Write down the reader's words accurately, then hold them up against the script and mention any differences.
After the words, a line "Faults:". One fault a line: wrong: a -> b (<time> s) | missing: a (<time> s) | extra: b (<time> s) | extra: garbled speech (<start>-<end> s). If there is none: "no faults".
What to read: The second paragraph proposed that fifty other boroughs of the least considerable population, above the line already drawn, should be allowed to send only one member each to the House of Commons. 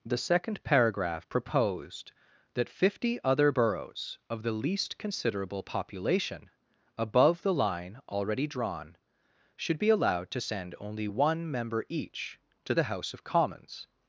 The second paragraph proposed that fifty other boroughs of the least considerable population, above the line already drawn, should be allowed to send only one member each to the House of Commons.
Faults:
no faults